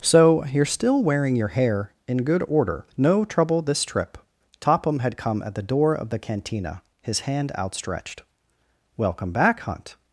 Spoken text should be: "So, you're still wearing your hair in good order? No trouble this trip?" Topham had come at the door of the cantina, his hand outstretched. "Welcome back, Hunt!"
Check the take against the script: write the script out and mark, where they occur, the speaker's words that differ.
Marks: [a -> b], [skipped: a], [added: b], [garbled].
"So, you're still wearing your hair in good order? No trouble this trip?" Topham had come at the door of the cantina, his hand outstretched. "Welcome back, Hunt!"